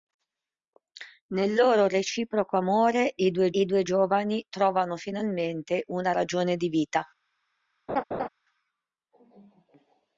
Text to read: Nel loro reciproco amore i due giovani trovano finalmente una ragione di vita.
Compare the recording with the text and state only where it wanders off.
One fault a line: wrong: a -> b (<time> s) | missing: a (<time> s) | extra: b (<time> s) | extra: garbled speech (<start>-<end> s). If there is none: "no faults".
extra: i due (3.5 s)